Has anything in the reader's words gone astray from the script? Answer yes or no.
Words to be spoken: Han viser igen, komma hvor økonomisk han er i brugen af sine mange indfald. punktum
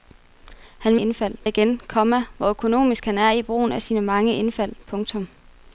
yes